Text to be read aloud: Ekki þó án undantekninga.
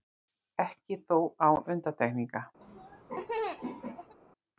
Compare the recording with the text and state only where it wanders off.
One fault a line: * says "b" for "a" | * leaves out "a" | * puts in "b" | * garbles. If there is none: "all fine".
all fine